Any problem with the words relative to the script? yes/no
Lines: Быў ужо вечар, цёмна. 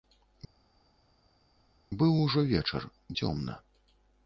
no